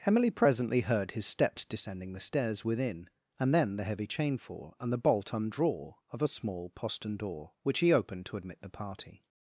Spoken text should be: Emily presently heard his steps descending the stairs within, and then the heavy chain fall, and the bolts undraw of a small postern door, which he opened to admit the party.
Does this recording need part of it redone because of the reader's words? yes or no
yes